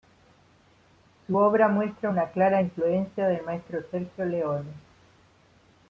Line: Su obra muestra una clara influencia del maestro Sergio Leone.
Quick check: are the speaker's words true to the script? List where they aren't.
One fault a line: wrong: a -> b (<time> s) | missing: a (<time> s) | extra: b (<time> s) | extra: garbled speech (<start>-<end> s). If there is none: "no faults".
no faults